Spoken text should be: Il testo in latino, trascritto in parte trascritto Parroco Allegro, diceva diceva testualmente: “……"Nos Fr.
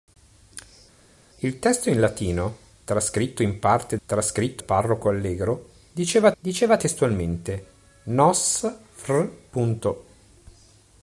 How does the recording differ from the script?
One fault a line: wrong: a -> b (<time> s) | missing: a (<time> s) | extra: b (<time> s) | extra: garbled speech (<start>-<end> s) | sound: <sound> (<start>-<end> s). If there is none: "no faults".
no faults